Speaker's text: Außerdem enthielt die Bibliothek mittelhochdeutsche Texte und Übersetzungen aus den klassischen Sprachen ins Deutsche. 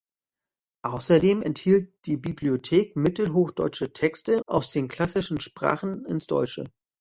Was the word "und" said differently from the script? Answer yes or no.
yes